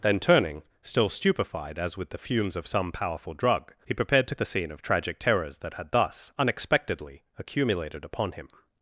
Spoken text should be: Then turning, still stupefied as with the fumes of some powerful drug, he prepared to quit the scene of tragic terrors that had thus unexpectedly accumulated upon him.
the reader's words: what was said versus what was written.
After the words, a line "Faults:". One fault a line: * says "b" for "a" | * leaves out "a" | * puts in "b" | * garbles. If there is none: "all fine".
Then turning, still stupefied as with the fumes of some powerful drug, he prepared to the scene of tragic terrors that had thus unexpectedly accumulated upon him.
Faults:
* leaves out "quit"